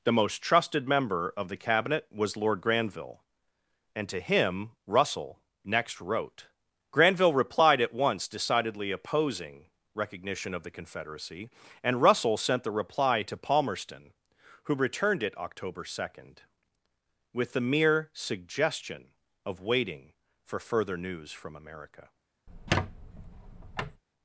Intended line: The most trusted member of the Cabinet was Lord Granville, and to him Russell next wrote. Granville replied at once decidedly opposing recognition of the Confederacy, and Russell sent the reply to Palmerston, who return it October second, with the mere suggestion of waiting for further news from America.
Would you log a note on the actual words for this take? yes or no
yes